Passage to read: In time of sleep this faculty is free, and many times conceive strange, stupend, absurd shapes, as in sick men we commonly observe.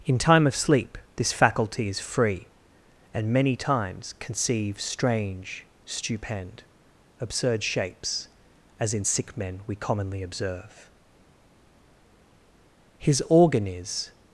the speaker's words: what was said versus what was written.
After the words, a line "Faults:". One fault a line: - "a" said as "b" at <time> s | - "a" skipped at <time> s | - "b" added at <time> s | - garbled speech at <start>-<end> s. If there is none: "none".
In time of sleep this faculty is free, and many times conceive strange, stupend, absurd shapes, as in sick men we commonly observe. His organ is
Faults:
- "His organ is" added at 13.0 s